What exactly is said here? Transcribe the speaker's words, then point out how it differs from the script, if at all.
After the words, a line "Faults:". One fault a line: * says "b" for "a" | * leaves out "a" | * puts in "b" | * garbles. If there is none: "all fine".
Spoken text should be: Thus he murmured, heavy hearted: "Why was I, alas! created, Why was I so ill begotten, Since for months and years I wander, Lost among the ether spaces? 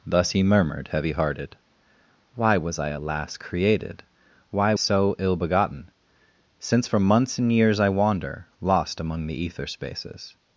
Thus he murmured, heavy hearted: "Why was I, alas! created, Why so ill begotten, Since for months and years I wander, Lost among the ether spaces?
Faults:
* leaves out "was I"